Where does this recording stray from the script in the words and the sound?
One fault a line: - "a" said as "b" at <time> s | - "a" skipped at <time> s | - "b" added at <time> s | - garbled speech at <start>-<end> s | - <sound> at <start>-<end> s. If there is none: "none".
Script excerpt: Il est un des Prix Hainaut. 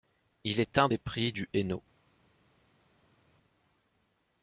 - "du" added at 1.3 s